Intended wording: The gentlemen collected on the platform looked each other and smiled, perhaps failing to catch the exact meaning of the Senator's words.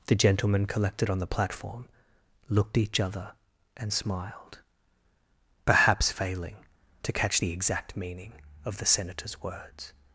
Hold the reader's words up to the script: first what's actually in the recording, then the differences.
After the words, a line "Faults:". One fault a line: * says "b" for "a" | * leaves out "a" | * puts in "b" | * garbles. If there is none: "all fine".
The gentlemen collected on the platform looked each other and smiled, perhaps failing to catch the exact meaning of the Senator's words.
Faults:
all fine